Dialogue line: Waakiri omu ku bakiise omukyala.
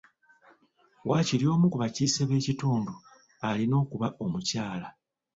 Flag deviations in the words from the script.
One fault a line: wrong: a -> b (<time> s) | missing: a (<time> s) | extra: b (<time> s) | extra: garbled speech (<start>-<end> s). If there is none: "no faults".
extra: b'ekitundu alina okuba (2.3 s)